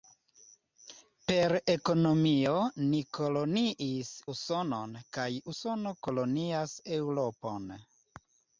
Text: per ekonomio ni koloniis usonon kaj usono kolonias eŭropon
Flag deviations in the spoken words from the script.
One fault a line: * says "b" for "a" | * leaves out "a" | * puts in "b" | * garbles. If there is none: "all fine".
all fine